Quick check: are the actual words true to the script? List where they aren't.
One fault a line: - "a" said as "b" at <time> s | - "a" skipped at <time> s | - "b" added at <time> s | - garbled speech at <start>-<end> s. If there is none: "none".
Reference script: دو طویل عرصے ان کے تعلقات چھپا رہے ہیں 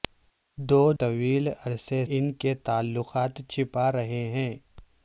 none